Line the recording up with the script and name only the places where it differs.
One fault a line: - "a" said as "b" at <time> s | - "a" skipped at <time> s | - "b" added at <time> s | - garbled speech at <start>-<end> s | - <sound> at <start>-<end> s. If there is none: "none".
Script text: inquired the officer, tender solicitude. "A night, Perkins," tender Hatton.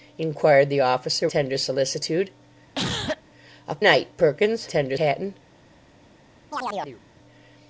- cough at 2.8-3.2 s
- chirp at 6.5-7.0 s